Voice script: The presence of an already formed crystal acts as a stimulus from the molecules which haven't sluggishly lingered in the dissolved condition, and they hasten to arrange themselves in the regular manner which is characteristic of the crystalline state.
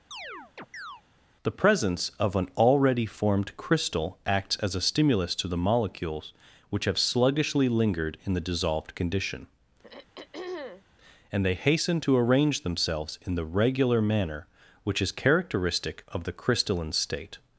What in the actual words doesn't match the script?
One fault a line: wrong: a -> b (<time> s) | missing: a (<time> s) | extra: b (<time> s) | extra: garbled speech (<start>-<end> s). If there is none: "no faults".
wrong: from -> to (5.4 s)
wrong: haven't -> have (6.8 s)